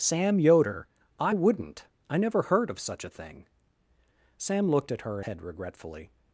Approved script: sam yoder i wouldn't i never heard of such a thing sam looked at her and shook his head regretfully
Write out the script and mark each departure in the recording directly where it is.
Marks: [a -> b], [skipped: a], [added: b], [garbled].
sam yoder i wouldn't i never heard of such a thing sam looked at her [skipped: and shook his] head regretfully